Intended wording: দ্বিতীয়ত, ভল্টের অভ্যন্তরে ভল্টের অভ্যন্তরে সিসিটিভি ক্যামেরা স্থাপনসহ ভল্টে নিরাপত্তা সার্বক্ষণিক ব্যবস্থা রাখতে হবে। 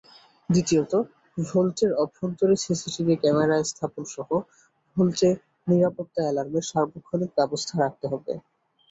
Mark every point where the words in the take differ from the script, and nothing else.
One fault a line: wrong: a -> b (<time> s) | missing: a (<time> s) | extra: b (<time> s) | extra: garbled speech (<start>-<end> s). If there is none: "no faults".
missing: ভল্টের অভ্যন্তরে (2.5 s)
extra: অ্যালার্মের (6.2 s)